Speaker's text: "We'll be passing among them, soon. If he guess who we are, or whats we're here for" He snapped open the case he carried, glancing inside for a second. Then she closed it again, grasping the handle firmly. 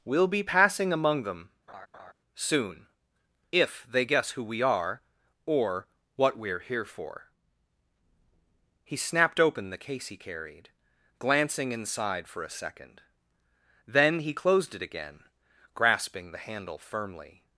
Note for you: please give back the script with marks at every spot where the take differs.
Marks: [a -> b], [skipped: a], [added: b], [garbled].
"We'll be passing among them, soon. If [he -> they] guess who we are, or [whats -> what] we're here for" He snapped open the case he carried, glancing inside for a second. Then [she -> he] closed it again, grasping the handle firmly.